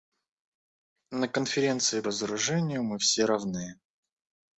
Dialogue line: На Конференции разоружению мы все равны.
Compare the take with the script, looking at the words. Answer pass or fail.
pass